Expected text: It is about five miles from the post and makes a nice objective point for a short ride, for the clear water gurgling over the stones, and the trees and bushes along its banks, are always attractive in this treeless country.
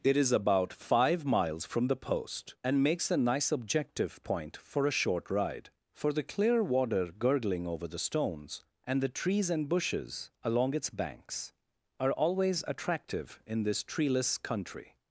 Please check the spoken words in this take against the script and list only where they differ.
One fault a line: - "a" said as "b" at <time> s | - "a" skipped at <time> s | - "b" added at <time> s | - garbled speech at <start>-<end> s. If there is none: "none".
none